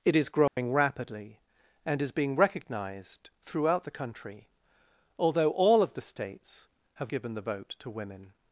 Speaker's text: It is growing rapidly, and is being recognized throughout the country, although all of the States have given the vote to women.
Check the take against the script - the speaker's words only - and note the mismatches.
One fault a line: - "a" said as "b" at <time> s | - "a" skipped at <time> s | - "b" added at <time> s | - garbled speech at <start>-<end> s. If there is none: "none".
none